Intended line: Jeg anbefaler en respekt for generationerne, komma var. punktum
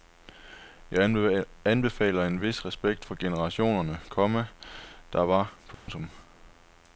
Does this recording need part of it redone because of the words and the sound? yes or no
yes